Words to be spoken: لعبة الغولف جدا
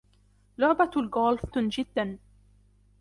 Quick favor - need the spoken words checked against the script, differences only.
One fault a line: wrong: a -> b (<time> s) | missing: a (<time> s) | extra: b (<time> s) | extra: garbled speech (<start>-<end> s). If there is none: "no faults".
no faults